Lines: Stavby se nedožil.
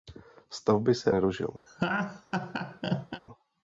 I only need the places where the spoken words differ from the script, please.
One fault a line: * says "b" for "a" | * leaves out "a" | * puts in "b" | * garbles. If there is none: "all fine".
all fine